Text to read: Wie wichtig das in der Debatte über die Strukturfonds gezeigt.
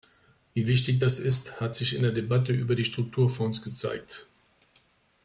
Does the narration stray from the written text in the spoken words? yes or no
yes